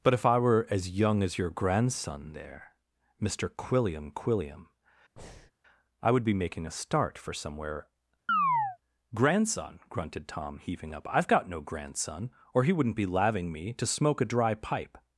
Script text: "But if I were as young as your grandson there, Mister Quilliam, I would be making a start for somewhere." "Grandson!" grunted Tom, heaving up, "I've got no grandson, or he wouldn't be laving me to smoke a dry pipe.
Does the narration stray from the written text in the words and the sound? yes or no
yes